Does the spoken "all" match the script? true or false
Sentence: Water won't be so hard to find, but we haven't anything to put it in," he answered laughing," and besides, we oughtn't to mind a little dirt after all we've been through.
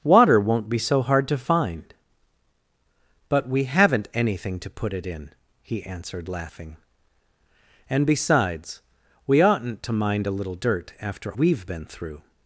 false